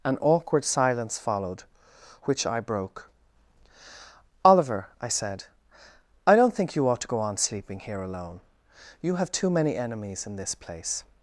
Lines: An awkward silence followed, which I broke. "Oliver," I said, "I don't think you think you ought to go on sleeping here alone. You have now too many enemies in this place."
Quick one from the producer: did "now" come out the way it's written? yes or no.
no